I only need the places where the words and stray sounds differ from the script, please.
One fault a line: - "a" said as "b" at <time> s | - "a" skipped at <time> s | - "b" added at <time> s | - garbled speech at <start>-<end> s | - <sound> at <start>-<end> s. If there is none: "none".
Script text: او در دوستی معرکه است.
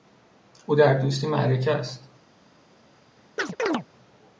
- chirp at 3.4-3.9 s